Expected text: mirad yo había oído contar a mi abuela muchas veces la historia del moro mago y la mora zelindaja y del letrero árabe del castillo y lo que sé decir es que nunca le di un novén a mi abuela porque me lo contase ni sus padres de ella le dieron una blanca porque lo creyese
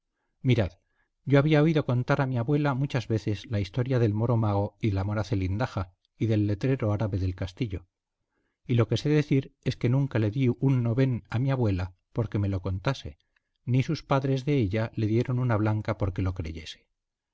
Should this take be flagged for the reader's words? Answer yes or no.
no